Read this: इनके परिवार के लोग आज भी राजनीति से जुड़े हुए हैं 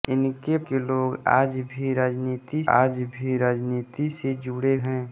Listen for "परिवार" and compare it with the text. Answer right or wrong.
wrong